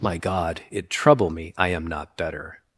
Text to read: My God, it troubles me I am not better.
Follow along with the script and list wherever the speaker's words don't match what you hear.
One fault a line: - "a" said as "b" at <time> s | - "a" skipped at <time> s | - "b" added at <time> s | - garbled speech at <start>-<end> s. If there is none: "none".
- "troubles" said as "trouble" at 0.9 s